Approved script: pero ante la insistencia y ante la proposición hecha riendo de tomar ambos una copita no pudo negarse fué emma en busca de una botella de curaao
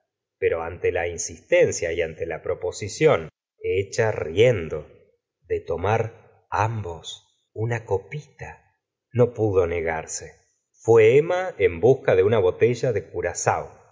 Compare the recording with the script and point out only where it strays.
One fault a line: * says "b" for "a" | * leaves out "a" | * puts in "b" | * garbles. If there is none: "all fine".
all fine